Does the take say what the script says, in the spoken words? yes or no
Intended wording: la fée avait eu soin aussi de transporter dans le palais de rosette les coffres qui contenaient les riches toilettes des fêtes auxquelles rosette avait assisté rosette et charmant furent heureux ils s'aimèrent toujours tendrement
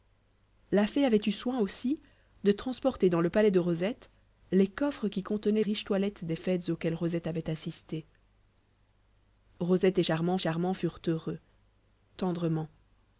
no